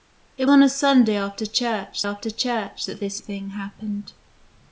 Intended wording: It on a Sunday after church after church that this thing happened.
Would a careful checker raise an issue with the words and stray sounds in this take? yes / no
no